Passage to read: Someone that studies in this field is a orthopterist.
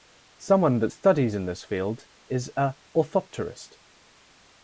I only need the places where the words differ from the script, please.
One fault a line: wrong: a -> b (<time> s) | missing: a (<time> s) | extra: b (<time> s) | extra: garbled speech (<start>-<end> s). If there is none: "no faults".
no faults